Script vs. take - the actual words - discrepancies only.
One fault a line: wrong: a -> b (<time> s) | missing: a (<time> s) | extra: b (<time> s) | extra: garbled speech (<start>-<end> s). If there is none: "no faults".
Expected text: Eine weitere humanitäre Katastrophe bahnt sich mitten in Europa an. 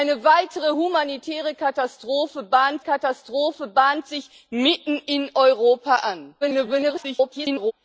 extra: Katastrophe bahnt (2.8 s)
extra: garbled speech (6.4-7.7 s)